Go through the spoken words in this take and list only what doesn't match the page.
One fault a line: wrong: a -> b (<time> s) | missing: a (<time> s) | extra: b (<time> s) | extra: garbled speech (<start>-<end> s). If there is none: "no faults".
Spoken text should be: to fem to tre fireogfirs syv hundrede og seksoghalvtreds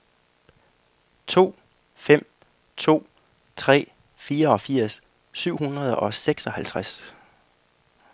no faults